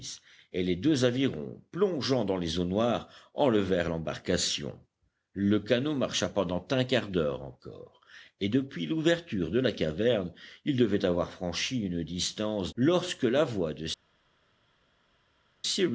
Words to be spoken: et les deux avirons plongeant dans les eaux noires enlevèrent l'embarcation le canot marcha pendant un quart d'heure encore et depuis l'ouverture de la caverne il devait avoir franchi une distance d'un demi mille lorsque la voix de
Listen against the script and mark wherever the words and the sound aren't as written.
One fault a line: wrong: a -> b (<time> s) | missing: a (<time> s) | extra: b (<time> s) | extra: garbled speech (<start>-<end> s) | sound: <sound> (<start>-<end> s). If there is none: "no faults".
missing: d'un demi mille (12.7 s)